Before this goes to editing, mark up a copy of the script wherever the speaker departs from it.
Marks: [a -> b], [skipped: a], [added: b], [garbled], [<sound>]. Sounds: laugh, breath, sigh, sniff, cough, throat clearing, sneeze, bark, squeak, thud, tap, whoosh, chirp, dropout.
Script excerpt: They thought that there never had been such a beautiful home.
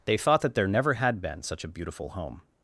They thought that there never had been such a beautiful home.